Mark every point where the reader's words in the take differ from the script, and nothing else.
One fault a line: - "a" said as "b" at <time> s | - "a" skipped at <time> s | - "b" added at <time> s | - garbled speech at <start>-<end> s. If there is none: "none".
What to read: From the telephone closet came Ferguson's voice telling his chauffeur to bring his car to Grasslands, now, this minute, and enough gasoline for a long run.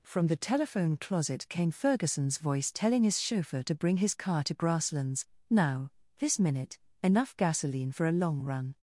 - "and" skipped at 6.8 s